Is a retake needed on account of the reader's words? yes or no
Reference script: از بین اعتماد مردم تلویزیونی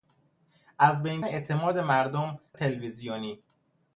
no